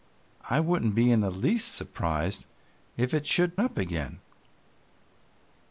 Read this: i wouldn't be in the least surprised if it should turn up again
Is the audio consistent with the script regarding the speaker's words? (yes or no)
no